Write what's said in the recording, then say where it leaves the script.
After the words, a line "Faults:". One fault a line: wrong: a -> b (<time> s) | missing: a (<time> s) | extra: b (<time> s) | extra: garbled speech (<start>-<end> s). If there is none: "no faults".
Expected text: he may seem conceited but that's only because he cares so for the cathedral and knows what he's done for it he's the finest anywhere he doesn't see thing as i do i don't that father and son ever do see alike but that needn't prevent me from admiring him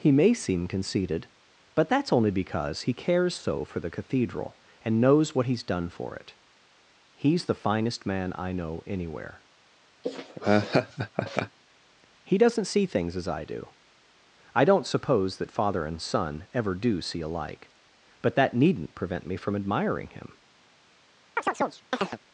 he may seem conceited but that's only because he cares so for the cathedral and knows what he's done for it he's the finest man i know anywhere he doesn't see things as i do i don't suppose that father and son ever do see alike but that needn't prevent me from admiring him
Faults:
extra: man i know (8.0 s)
wrong: thing -> things (12.8 s)
extra: suppose (14.9 s)